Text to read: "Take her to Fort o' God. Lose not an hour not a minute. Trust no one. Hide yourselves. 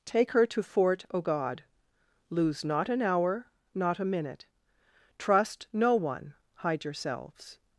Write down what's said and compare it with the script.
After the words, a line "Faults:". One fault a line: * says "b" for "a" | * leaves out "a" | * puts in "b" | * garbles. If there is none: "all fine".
"Take her to Fort o' God. Lose not an hour not a minute. Trust no one. Hide yourselves.
Faults:
all fine